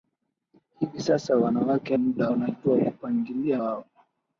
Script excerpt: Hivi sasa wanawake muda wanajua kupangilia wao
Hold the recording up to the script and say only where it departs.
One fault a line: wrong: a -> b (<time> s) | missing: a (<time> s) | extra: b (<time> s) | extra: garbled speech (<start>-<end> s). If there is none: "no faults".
no faults